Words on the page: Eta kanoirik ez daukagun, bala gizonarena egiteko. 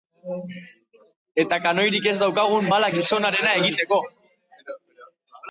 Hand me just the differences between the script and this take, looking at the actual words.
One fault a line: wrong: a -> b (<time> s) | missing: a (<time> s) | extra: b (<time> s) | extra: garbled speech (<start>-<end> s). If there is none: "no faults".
no faults